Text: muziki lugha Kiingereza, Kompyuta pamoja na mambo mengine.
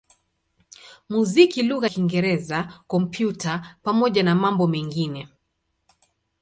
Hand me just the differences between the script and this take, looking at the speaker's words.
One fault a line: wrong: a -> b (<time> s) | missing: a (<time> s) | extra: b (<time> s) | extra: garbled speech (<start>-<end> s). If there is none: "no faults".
no faults